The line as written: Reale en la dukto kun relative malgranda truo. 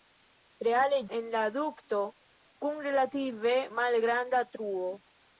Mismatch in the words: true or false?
false